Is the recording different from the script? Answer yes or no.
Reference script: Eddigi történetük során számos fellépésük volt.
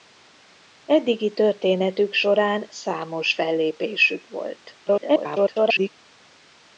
yes